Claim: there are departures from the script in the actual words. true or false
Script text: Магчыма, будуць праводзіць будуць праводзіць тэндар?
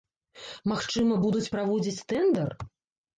true